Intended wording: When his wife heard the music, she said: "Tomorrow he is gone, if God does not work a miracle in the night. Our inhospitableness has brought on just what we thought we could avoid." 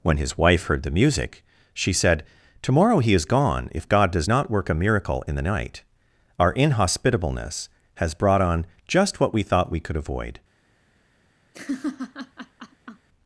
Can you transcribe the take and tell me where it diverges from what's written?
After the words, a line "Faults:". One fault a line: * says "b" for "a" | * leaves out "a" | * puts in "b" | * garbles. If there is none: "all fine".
When his wife heard the music, she said: "Tomorrow he is gone, if God does not work a miracle in the night. Our inhospitableness has brought on just what we thought we could avoid."
Faults:
all fine